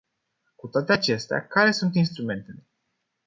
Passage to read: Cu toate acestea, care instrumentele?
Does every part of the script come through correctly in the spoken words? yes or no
no